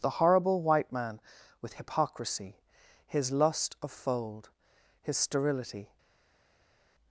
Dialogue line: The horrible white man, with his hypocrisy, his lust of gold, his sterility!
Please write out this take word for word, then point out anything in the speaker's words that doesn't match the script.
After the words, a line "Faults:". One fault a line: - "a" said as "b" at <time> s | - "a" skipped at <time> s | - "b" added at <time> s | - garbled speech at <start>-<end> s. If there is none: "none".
The horrible white man, with hypocrisy, his lust of fold, his sterility!
Faults:
- "his" skipped at 1.7 s
- "gold" said as "fold" at 3.9 s